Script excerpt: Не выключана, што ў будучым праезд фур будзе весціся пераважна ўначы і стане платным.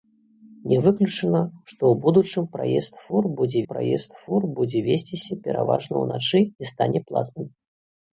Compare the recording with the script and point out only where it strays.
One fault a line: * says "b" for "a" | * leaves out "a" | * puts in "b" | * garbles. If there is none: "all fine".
* puts in "праезд фур будзе"